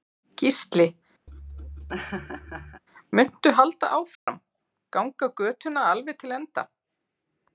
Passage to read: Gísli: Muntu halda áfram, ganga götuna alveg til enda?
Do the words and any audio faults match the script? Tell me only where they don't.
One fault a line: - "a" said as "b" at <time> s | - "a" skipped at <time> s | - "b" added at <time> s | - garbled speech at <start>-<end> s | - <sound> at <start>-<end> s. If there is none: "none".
- laugh at 1.3-2.8 s
- dropout at 4.1-4.3 s